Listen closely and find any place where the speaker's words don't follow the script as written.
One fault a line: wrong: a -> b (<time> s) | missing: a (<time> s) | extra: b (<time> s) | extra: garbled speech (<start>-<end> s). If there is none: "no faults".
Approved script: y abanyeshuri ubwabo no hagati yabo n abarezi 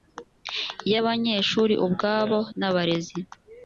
missing: no hagati yabo (2.4 s)